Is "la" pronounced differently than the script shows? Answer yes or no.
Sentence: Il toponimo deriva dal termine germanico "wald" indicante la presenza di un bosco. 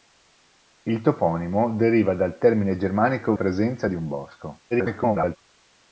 yes